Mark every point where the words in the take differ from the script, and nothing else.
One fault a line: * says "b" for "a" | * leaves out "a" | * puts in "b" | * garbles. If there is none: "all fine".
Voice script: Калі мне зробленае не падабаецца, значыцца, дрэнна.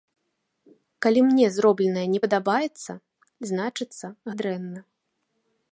all fine